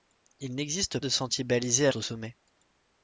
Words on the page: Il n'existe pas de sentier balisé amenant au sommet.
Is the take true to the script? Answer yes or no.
no